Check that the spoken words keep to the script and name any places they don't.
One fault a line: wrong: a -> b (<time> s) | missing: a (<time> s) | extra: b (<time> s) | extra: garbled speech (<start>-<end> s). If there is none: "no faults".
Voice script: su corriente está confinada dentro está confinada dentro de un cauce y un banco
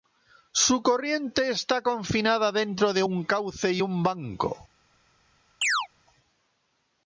missing: está confinada dentro (2.9 s)